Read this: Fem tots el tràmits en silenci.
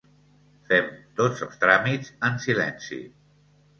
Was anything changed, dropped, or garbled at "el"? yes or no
yes